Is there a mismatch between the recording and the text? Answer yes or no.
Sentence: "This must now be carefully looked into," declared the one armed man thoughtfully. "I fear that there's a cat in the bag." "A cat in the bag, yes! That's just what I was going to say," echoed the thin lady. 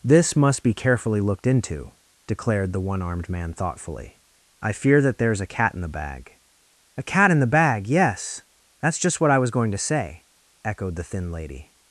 yes